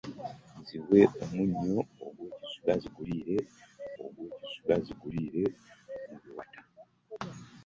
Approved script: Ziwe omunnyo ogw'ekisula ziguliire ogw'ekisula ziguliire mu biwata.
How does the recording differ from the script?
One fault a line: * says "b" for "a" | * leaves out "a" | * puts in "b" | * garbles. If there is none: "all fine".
all fine